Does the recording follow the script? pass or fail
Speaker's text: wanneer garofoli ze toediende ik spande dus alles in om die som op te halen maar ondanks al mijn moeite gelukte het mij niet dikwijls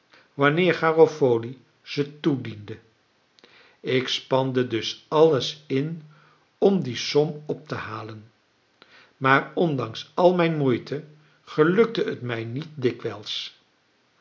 pass